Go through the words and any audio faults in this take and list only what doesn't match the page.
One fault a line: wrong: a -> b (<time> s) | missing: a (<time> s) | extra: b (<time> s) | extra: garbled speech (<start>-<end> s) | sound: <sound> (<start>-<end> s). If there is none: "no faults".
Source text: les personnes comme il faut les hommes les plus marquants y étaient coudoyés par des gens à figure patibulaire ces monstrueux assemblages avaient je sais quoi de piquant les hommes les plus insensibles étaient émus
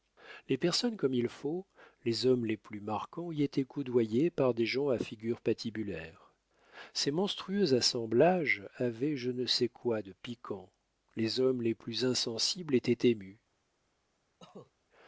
extra: ne (9.3 s)
sound: cough (14.4-14.7 s)